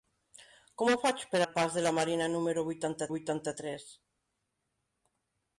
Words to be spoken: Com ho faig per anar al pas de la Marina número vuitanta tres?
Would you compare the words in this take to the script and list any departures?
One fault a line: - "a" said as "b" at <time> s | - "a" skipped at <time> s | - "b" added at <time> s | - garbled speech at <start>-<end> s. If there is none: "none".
- "anar" skipped at 1.4 s
- "vuitanta" added at 3.1 s